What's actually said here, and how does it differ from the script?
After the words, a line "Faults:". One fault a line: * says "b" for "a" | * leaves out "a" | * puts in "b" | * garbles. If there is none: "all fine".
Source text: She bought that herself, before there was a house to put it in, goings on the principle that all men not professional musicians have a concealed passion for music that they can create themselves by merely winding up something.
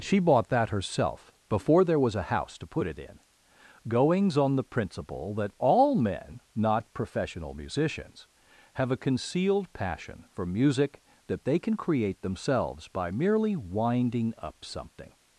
She bought that herself, before there was a house to put it in, goings on the principle that all men not professional musicians have a concealed passion for music that they can create themselves by merely winding up something.
Faults:
all fine